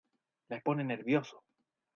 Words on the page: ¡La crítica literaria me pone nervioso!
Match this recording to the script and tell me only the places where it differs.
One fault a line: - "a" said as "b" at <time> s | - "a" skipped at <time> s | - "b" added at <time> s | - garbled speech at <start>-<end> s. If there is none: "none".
- "crítica literaria me" skipped at 0.6 s